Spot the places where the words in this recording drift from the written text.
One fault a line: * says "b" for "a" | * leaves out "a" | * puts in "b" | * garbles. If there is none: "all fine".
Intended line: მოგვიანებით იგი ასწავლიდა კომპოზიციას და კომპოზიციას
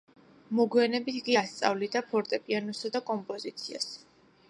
* says "ფორტეპიანოსა" for "კომპოზიციას"